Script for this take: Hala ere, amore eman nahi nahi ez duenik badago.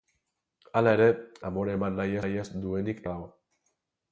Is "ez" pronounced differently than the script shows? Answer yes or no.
no